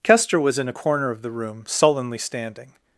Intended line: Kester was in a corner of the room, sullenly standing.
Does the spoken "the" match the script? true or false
true